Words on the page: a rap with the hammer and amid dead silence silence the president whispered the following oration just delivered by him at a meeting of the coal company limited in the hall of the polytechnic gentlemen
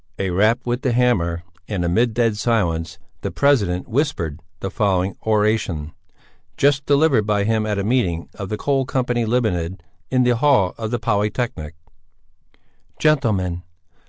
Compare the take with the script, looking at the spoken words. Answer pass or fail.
fail